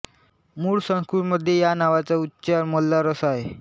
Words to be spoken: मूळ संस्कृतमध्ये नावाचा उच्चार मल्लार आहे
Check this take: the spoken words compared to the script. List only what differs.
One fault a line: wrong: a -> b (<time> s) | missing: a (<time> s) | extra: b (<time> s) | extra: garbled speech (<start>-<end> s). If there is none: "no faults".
extra: या (1.6 s)
extra: असा (3.1 s)